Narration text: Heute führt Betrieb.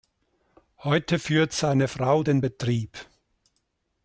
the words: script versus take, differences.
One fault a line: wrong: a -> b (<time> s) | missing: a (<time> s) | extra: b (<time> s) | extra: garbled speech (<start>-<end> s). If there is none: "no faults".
extra: seine Frau den (1.5 s)